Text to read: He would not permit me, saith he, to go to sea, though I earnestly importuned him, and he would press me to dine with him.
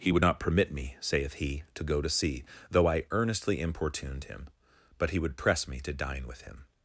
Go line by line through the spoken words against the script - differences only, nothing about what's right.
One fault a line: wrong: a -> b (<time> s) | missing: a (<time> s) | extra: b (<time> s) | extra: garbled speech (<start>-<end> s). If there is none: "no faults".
wrong: and -> but (5.0 s)